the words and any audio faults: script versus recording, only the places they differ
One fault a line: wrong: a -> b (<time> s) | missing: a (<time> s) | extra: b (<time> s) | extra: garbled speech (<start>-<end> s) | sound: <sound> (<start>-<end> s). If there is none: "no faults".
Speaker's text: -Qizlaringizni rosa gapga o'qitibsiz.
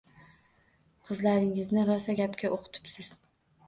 no faults